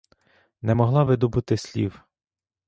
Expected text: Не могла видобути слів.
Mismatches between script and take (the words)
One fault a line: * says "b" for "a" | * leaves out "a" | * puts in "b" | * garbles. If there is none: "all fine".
all fine